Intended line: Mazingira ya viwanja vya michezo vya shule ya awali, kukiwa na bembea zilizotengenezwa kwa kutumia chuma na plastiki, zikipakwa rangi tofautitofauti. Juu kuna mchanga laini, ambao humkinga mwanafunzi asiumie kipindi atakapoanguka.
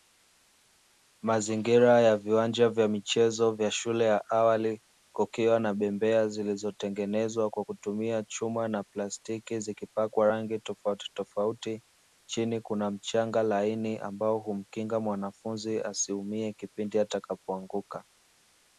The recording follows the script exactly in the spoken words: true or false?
false